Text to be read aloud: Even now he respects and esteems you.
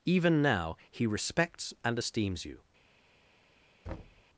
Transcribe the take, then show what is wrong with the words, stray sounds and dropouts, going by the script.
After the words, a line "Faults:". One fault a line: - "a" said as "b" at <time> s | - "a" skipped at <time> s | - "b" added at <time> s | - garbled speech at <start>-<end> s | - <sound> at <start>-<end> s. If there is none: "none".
Even now he respects and esteems you.
Faults:
- thud at 3.9-4.2 s